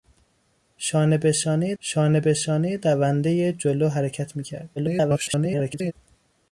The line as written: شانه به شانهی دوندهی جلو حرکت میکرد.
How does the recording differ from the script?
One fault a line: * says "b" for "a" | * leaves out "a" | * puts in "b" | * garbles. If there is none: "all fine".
* puts in "شانه به شانهی"
* garbles